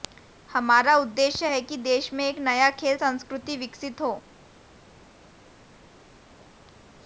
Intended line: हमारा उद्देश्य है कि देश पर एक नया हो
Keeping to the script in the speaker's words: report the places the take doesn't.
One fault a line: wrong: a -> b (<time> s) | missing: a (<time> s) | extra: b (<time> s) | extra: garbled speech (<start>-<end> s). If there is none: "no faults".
wrong: पर -> में (2.1 s)
extra: खेल संस्कृति विकसित (2.7 s)